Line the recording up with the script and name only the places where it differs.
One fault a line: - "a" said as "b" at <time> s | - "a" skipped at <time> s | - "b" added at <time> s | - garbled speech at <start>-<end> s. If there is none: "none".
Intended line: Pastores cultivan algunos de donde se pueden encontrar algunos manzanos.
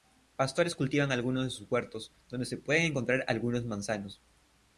- "sus huertos" added at 1.5 s